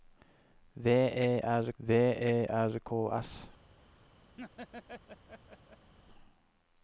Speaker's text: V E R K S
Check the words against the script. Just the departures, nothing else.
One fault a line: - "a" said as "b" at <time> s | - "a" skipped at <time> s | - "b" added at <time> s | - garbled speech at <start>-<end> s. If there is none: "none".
- "v E R" added at 1.8 s